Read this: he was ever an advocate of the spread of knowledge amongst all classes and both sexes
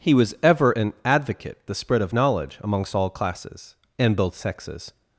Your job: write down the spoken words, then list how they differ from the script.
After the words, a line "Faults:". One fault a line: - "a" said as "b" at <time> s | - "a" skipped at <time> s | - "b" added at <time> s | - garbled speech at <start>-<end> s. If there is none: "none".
he was ever an advocate the spread of knowledge amongst all classes and both sexes
Faults:
- "of" skipped at 1.6 s